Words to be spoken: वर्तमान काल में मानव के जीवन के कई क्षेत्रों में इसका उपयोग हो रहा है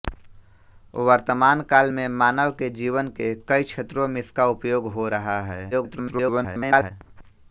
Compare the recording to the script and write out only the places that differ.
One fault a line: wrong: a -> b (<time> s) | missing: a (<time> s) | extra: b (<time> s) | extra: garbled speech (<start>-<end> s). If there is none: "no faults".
extra: garbled speech (5.7-6.9 s)